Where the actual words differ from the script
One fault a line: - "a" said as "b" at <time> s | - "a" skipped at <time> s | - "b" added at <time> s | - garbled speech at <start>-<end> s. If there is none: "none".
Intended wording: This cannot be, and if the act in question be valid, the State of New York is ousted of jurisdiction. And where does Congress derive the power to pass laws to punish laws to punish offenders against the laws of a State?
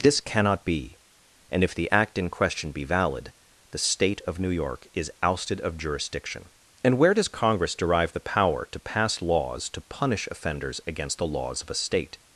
- "laws to punish" skipped at 10.3 s